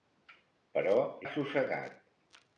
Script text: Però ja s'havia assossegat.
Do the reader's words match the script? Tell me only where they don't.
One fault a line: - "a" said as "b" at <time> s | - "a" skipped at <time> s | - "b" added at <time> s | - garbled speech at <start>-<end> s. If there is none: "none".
- "ja s'havia" skipped at 0.9 s